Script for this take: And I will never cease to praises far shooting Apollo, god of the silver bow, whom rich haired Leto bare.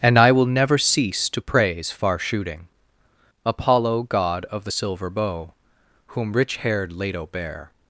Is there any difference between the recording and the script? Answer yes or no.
yes